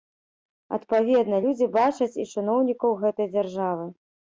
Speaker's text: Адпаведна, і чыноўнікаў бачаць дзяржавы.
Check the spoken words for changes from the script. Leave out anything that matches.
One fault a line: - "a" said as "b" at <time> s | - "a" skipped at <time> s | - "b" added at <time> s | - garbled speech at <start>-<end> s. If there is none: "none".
- "людзі бачаць" added at 1.5 s
- "бачаць" said as "гэтай" at 3.1 s